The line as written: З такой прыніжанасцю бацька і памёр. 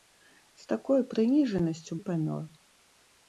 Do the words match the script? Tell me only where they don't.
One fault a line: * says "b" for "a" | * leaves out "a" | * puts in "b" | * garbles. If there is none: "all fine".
* leaves out "бацька"